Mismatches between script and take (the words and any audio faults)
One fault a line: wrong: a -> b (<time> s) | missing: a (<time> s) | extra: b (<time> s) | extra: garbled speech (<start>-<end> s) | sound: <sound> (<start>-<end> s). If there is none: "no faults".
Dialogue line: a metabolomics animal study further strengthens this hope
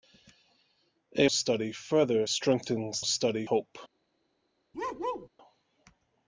missing: metabolomics animal (1.3 s)
wrong: this -> study (3.0 s)
sound: bark (4.7-5.3 s)